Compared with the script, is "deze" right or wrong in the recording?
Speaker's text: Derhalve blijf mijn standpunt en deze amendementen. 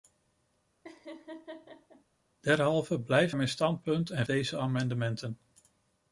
right